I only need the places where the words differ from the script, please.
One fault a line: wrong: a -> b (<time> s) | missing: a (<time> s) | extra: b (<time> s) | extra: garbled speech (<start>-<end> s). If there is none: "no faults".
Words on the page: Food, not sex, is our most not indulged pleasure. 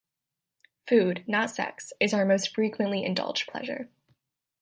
wrong: not -> frequently (2.5 s)